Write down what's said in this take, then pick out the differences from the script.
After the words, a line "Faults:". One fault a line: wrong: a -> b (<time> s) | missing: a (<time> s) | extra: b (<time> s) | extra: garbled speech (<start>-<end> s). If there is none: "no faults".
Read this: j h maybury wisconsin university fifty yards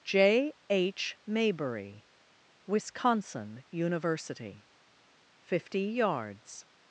j h maybury wisconsin university fifty yards
Faults:
no faults